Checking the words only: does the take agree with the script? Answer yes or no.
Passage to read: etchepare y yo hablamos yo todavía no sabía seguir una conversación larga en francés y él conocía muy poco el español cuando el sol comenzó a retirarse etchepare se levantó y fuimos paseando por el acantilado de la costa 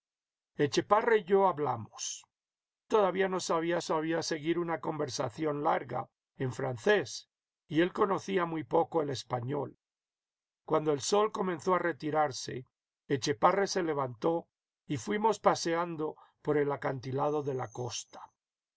no